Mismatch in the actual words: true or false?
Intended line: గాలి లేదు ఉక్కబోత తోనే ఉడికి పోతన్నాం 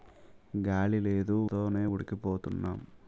true